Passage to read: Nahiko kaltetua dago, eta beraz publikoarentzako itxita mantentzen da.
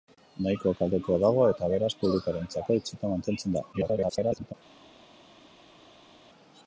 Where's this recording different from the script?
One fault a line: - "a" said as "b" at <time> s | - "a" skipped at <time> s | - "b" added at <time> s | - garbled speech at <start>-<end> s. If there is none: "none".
- garbled speech at 3.7-4.5 s